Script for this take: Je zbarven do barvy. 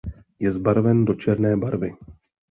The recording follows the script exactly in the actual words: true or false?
false